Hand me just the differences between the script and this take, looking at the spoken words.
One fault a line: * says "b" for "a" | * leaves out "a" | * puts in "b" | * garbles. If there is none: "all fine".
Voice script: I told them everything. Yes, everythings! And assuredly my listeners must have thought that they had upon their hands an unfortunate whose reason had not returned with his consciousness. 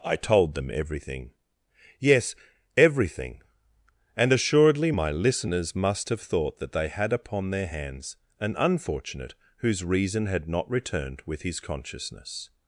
* says "everything" for "everythings"